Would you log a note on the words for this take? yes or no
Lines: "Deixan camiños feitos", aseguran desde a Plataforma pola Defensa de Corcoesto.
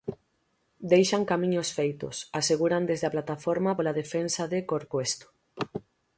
no